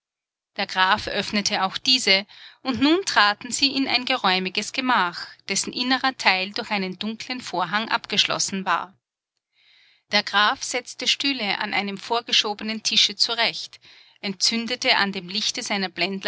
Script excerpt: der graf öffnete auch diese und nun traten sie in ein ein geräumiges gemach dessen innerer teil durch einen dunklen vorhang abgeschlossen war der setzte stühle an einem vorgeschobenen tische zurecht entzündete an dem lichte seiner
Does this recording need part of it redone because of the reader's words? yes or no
yes